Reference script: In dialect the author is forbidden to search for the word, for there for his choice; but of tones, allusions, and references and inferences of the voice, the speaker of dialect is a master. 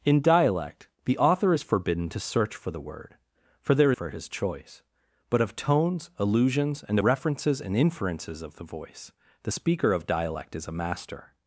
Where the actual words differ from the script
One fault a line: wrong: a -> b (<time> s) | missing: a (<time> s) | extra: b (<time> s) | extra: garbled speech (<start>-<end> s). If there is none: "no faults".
no faults